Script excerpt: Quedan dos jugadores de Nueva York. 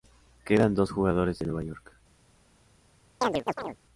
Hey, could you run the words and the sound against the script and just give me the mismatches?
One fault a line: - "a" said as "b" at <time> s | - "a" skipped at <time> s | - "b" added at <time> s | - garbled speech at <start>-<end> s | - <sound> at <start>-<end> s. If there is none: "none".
- chirp at 3.2-3.8 s